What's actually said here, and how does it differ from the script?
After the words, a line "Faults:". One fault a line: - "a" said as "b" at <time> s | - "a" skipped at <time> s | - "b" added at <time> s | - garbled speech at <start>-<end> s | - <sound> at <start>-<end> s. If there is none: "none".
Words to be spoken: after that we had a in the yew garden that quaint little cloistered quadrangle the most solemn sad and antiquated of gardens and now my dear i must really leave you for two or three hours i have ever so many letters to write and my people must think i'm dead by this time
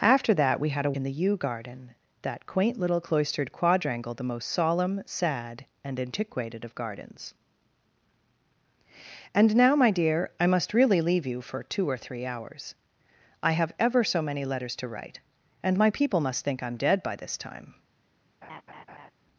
after that we had a in the yew garden that quaint little cloistered quadrangle the most solemn sad and antiquated of gardens and now my dear i must really leave you for two or three hours i have ever so many letters to write and my people must think i'm dead by this time
Faults:
- laugh at 18.4-19.1 s